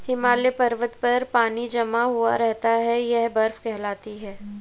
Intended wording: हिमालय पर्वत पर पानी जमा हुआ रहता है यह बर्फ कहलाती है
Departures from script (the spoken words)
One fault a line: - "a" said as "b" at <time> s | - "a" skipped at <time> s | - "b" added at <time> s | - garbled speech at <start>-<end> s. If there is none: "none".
none